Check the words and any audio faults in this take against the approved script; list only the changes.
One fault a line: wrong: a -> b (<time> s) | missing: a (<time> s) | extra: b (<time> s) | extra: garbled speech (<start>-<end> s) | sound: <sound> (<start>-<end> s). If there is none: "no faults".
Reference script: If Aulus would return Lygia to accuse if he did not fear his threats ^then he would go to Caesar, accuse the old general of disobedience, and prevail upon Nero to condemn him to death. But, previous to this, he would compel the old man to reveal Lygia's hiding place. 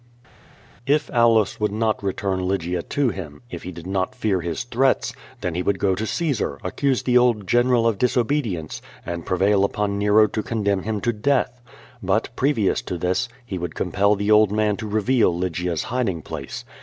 extra: not (1.7 s)
wrong: accuse -> him (3.1 s)